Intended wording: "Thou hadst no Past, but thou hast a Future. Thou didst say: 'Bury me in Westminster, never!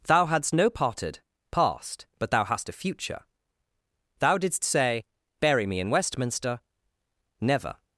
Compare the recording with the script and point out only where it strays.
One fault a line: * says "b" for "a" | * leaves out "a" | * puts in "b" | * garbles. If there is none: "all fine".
* puts in "parted"